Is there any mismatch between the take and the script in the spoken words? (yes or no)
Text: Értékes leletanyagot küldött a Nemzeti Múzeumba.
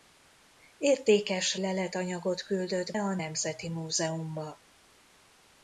no